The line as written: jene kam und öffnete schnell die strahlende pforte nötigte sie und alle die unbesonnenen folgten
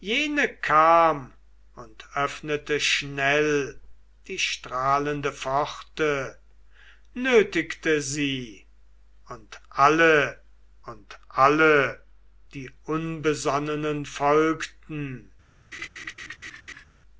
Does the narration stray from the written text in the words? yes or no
yes